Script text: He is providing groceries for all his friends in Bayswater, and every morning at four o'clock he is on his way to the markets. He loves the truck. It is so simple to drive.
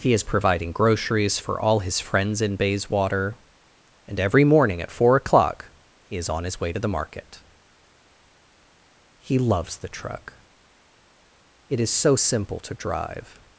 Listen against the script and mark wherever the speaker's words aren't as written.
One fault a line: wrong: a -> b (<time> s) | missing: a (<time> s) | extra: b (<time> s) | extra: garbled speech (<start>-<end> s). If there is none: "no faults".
wrong: markets -> market (6.9 s)